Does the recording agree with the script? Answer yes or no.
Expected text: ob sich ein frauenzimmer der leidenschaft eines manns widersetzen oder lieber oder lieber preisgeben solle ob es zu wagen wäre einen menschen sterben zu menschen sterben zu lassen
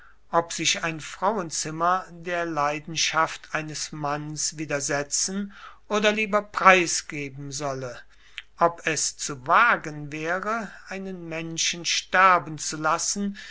no